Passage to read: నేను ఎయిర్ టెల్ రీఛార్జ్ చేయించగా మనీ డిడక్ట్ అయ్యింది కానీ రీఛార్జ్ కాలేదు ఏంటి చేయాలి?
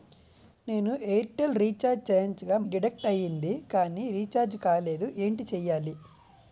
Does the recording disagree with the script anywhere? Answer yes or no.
yes